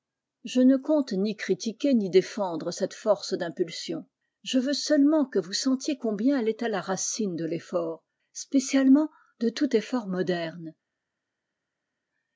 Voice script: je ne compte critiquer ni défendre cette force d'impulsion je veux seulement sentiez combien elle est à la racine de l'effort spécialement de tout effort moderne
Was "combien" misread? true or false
false